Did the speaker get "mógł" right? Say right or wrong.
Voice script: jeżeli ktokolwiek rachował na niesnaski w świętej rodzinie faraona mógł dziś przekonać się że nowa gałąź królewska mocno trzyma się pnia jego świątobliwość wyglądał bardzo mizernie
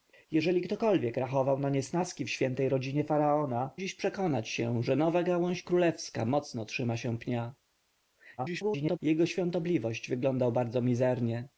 wrong